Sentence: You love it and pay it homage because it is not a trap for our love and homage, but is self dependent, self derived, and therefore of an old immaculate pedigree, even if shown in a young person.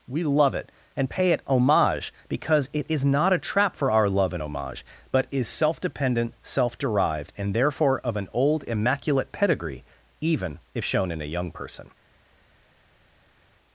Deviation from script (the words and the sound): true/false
true